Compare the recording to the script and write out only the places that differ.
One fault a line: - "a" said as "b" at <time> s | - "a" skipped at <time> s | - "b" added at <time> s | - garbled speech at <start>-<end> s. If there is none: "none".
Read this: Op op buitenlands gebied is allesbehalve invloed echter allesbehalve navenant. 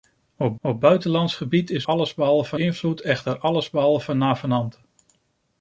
none